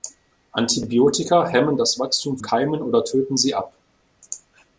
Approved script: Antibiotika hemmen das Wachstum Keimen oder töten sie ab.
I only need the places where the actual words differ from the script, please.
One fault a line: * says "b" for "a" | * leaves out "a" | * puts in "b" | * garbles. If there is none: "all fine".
all fine